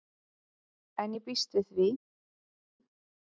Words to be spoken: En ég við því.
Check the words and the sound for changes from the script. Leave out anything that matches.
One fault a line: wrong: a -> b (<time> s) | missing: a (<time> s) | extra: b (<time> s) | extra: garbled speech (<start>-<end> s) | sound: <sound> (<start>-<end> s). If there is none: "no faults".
extra: býst (1.2 s)